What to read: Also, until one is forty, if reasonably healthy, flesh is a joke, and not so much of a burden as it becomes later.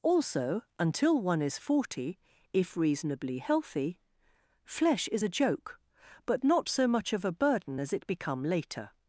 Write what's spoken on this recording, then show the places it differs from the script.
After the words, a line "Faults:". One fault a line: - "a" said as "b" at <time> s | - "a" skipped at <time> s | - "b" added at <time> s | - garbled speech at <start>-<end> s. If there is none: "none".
Also, until one is forty, if reasonably healthy, flesh is a joke, but not so much of a burden as it become later.
Faults:
- "and" said as "but" at 6.2 s
- "becomes" said as "become" at 8.1 s